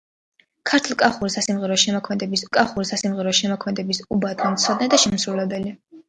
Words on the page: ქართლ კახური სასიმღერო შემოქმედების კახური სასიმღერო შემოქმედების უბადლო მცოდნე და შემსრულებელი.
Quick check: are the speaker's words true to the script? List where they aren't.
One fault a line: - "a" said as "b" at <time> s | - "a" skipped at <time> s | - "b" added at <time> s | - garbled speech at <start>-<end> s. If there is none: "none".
none